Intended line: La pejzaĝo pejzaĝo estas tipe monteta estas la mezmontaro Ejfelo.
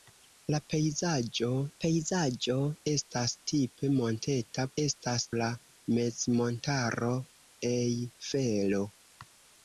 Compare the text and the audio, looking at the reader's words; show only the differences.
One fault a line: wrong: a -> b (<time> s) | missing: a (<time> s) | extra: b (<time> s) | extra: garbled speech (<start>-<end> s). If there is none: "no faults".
no faults